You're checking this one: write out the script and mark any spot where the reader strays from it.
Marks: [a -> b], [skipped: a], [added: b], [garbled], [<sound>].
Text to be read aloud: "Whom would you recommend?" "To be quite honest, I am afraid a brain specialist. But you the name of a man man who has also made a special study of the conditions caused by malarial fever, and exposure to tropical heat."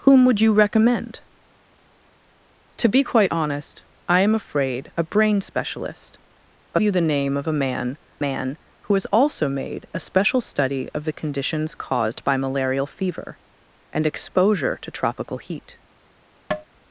"Whom would you recommend?" "To be quite honest, I am afraid a brain specialist. But you the name of a man man who has also made a special study of the conditions caused by malarial fever, and exposure to tropical heat." [tap]